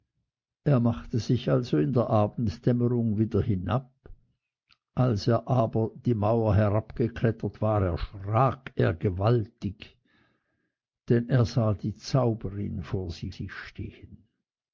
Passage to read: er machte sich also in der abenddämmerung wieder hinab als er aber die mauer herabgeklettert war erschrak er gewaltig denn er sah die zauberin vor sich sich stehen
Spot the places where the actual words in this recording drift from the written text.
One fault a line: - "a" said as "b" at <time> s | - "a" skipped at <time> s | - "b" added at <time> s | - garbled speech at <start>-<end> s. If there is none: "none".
none